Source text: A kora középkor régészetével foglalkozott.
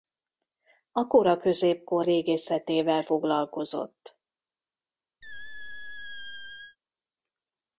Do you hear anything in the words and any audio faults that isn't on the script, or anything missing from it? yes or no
yes